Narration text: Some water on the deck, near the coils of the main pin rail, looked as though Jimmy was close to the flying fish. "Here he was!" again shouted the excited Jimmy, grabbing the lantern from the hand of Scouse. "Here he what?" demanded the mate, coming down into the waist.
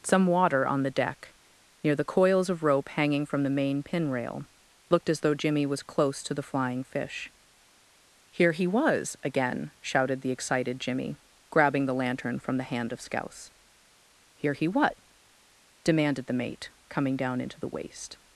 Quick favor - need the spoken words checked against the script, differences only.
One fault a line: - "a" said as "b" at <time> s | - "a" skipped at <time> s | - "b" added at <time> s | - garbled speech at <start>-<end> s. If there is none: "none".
- "rope hanging from" added at 2.6 s